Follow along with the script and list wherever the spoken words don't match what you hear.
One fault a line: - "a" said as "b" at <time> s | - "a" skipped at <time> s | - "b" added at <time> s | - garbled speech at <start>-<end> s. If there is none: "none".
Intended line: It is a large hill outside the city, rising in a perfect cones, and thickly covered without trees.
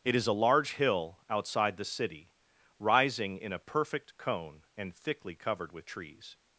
- "cones" said as "cone" at 4.2 s
- "without" said as "with" at 5.7 s